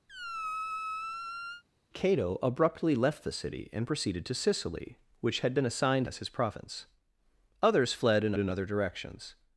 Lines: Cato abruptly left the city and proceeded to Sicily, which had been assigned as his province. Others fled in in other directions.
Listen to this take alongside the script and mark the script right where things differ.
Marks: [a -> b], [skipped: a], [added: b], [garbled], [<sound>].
[squeak] Cato abruptly left the city and proceeded to Sicily, which had been assigned as his province. Others fled in in other directions.